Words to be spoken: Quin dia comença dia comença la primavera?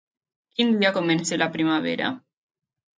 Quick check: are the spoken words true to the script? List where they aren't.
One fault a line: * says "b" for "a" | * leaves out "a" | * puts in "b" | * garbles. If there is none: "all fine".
* leaves out "dia comença"